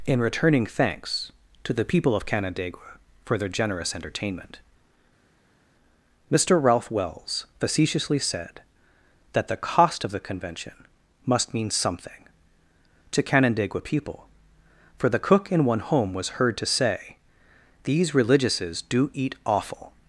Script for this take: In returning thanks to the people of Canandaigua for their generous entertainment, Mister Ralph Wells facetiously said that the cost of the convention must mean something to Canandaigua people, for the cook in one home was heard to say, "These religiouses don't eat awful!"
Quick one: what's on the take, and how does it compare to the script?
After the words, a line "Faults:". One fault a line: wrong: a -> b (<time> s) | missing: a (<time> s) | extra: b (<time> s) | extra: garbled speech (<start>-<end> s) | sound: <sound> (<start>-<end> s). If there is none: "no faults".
In returning thanks to the people of Canandaigua for their generous entertainment, Mister Ralph Wells facetiously said that the cost of the convention must mean something to Canandaigua people, for the cook in one home was heard to say, "These religiouses do eat awful!"
Faults:
wrong: don't -> do (18.9 s)